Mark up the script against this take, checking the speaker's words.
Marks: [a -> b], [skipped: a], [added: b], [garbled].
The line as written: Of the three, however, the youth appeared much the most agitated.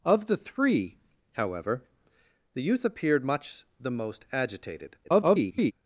Of the three, however, the youth appeared much the most agitated. [garbled]